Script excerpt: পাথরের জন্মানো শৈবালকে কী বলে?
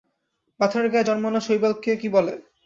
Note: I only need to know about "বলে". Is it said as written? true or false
true